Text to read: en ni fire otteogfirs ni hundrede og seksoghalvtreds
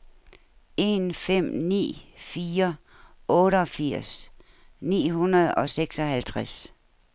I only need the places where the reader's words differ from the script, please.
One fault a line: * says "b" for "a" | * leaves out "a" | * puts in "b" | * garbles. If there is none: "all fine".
* puts in "fem"